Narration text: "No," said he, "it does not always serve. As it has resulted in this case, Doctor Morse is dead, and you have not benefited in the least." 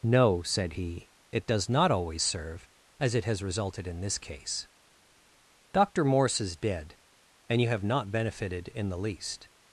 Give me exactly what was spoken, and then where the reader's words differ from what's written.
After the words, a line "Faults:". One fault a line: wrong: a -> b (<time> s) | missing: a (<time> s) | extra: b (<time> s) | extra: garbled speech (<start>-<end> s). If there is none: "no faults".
"No," said he, "it does not always serve. As it has resulted in this case, Doctor Morse is dead, and you have not benefited in the least."
Faults:
no faults